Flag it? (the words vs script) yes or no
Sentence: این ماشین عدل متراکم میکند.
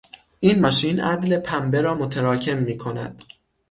yes